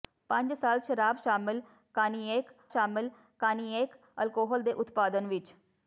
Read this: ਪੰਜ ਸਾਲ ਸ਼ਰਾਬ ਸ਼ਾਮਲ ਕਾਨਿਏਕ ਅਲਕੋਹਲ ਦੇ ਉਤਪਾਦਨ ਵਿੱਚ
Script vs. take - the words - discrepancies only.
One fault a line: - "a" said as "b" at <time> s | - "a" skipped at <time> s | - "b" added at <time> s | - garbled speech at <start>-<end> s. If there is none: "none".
- "ਸ਼ਾਮਲ ਕਾਨਿਏਕ" added at 2.7 s